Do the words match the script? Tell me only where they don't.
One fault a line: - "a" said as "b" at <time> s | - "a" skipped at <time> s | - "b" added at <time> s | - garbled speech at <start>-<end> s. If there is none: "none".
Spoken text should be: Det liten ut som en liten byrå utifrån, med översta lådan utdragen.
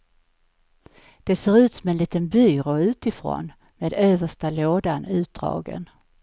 - "liten" said as "ser" at 1.4 s